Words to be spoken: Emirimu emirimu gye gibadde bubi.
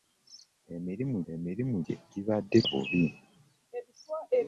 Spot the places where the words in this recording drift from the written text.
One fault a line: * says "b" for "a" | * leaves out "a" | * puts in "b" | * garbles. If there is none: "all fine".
all fine